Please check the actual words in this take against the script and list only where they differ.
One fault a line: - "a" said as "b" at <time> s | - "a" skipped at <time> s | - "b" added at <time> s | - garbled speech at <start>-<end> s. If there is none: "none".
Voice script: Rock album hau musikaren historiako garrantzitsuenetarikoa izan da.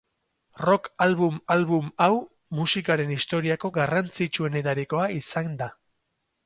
- "album" added at 1.5 s